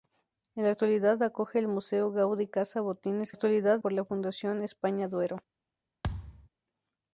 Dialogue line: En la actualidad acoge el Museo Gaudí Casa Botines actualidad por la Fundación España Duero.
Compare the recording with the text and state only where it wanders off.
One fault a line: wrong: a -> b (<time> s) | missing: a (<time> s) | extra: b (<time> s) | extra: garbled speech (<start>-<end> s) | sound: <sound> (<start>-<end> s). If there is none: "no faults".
sound: thud (6.0-6.5 s)